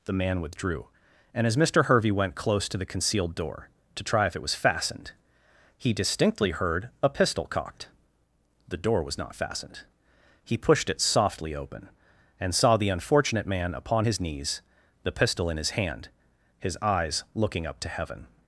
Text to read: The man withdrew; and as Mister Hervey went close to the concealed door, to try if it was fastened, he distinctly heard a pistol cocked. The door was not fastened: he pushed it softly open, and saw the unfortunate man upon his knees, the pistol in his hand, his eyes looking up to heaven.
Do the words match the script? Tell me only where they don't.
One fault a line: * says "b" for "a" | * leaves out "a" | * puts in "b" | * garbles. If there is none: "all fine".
all fine